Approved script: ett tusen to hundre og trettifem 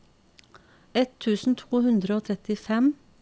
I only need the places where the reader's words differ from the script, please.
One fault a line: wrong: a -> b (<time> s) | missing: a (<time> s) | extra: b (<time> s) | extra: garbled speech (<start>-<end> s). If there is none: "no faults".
no faults